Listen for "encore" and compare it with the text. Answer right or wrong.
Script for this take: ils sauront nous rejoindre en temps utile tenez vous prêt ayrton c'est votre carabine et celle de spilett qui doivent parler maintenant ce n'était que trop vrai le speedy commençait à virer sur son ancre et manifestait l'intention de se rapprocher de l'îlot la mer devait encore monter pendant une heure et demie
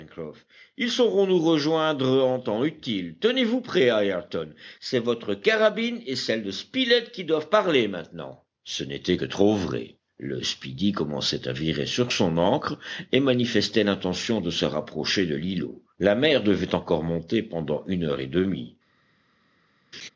right